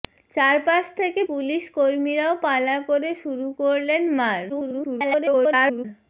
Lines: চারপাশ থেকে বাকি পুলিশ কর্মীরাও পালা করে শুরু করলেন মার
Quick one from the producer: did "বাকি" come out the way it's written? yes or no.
no